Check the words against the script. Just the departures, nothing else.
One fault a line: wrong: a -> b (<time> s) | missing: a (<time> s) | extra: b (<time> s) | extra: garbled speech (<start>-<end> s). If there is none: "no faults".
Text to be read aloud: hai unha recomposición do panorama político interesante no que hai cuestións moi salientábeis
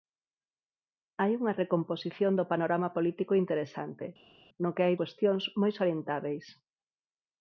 no faults